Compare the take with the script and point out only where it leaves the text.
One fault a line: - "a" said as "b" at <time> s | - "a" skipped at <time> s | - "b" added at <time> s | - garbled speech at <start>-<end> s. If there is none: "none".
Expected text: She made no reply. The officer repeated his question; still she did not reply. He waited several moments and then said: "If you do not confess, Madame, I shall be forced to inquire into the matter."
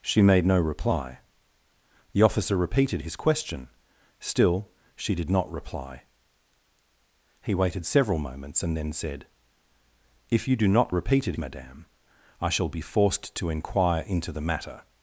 - "confess" said as "repeated" at 10.9 s